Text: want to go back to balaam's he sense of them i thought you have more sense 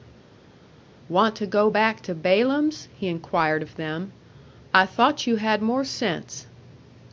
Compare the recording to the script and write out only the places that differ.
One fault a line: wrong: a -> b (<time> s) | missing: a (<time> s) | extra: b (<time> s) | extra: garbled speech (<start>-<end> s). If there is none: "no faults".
wrong: sense -> inquired (3.1 s)
wrong: have -> had (5.4 s)